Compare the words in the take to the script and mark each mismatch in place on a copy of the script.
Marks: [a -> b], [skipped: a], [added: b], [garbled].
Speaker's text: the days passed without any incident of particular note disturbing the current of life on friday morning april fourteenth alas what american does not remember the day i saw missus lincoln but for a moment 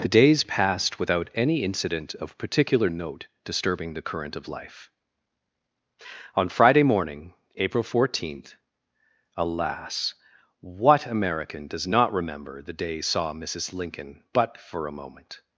the days passed without any incident of particular note disturbing the current of life on friday morning april fourteenth alas what american does not remember the day [skipped: i] saw missus lincoln but for a moment